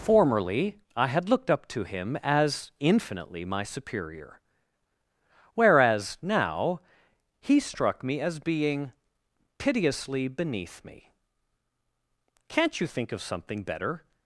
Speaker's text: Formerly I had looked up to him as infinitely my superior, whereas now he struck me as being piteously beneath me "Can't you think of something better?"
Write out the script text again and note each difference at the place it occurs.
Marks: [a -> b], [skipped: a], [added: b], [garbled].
Formerly I had looked up to him as infinitely my superior, whereas now he struck me as being piteously beneath me "Can't you think of something better?"